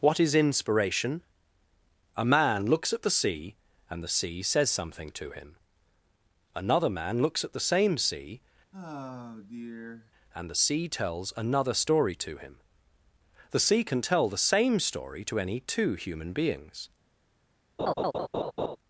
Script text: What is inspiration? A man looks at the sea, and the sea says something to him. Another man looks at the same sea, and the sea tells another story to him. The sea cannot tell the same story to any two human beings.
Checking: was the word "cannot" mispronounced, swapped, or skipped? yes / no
yes